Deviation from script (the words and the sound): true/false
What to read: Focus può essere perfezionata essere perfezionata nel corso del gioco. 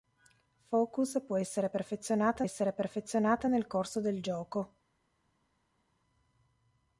false